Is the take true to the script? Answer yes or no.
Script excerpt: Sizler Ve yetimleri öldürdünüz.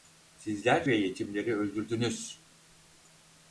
yes